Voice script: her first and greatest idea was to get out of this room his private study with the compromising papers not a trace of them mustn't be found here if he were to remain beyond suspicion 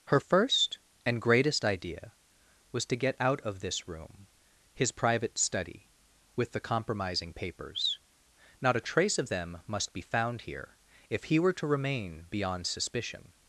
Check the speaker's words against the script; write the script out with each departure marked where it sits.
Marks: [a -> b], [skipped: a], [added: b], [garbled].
her first and greatest idea was to get out of this room his private study with the compromising papers not a trace of them [mustn't -> must] be found here if he were to remain beyond suspicion